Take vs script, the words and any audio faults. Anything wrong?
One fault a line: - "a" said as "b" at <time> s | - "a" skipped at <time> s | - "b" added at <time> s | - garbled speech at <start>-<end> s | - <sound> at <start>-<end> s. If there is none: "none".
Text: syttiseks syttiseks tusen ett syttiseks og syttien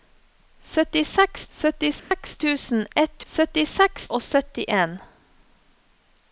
- dropout at 2.0-2.1 s